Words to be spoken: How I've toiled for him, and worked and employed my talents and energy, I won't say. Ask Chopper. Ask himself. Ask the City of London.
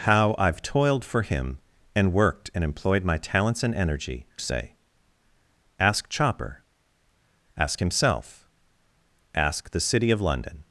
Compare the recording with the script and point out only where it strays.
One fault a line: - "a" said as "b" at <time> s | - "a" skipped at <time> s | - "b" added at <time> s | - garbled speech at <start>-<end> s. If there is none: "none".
- "I won't" skipped at 4.2 s